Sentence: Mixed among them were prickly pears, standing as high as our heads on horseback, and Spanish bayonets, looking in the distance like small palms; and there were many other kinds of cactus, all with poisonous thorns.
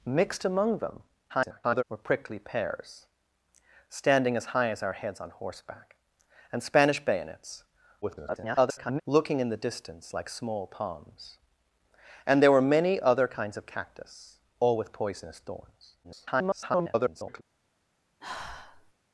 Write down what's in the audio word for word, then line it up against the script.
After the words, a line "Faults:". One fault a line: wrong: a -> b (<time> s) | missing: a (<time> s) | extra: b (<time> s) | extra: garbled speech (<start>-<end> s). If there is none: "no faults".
Mixed among them [garbled] were prickly pears, standing as high as our heads on horseback, and Spanish bayonets, [garbled] looking in the distance like small palms; and there were many other kinds of cactus, all with poisonous thorns. [garbled]
Faults:
extra: garbled speech (1.3-1.8 s)
extra: garbled speech (8.0-9.0 s)
extra: garbled speech (16.0-17.4 s)